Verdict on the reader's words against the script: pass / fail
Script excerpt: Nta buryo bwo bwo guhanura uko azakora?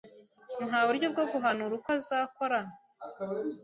fail